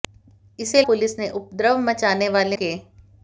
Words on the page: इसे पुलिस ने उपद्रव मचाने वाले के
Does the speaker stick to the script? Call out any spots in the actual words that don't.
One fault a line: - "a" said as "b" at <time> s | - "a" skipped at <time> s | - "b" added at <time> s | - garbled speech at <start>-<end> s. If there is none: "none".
none